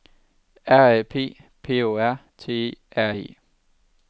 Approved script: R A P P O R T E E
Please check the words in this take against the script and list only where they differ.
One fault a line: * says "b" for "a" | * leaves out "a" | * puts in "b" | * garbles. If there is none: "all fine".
* puts in "R"